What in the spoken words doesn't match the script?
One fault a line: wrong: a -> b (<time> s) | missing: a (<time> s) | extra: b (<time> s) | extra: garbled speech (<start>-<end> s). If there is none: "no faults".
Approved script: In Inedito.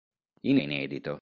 no faults